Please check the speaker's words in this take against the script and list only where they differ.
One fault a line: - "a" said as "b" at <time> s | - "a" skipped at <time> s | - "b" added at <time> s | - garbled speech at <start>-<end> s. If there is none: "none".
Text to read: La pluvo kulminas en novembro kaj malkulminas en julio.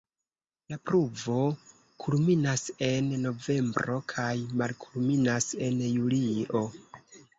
none